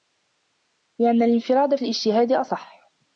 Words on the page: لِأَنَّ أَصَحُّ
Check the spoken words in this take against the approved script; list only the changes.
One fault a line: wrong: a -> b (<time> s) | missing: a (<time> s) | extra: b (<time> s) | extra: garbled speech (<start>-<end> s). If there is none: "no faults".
extra: الِانْفِرَادَ فِي الِاجْتِهَادِ (1.2 s)